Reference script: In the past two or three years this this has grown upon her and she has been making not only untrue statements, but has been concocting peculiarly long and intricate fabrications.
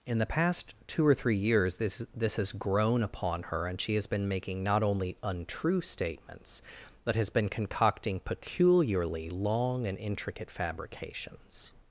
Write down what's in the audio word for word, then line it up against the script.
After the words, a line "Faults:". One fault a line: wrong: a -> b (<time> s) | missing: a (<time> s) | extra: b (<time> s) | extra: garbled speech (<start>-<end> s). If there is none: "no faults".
In the past two or three years this this has grown upon her and she has been making not only untrue statements, but has been concocting peculiarly long and intricate fabrications.
Faults:
no faults